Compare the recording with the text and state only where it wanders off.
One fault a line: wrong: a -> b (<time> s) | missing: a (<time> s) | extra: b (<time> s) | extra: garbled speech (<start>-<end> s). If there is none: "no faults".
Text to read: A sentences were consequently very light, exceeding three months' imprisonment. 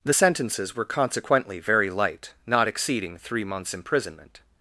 wrong: A -> The (0.0 s)
extra: not (2.5 s)